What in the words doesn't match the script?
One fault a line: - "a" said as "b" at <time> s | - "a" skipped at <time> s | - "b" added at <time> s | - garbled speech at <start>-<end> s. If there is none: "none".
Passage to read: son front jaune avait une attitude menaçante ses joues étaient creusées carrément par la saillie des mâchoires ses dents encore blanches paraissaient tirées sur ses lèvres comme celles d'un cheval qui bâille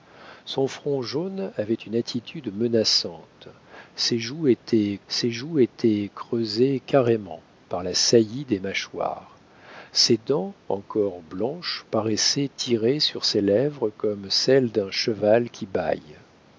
- "ses joues étaient" added at 5.1 s